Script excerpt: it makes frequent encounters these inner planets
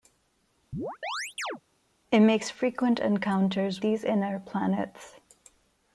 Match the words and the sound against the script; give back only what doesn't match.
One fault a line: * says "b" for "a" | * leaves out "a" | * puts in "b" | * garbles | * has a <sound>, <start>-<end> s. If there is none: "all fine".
* has a chirp, 0.7-1.6 s